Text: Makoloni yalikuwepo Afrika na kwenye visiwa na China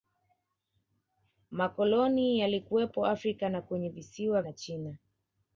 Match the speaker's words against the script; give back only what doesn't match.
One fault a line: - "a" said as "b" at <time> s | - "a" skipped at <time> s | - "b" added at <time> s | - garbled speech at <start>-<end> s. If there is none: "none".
none